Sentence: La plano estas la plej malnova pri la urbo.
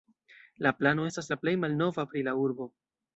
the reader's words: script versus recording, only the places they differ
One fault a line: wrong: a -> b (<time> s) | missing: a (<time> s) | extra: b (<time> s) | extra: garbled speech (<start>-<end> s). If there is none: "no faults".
no faults